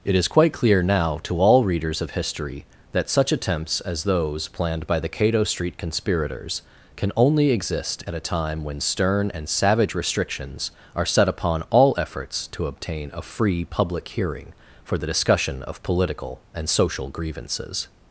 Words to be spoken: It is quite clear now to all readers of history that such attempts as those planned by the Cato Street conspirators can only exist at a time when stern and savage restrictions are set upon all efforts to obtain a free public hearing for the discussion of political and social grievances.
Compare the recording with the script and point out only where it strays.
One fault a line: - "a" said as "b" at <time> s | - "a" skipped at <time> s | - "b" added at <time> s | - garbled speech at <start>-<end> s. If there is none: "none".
none